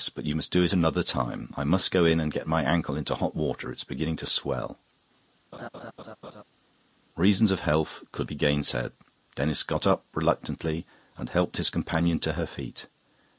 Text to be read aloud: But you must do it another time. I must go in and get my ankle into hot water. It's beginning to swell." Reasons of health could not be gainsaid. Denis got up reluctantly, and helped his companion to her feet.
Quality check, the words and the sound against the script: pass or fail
fail